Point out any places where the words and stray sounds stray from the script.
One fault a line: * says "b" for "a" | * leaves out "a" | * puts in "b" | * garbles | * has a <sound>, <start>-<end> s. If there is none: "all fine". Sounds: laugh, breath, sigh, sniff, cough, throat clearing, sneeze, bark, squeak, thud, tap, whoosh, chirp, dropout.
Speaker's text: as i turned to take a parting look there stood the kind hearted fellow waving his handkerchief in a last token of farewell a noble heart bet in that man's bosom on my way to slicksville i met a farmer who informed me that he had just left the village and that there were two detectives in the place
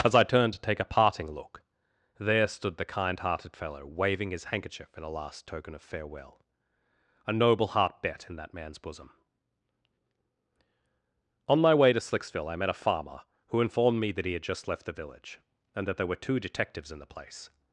all fine